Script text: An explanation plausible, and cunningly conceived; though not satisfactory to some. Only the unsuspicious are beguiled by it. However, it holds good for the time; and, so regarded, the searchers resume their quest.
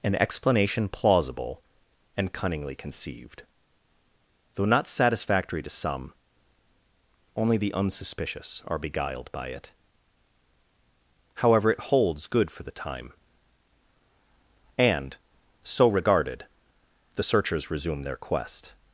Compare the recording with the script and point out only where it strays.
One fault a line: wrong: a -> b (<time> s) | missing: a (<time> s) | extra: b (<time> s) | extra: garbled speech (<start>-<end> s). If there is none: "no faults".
no faults